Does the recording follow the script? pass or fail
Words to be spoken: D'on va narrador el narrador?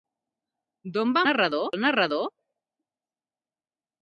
pass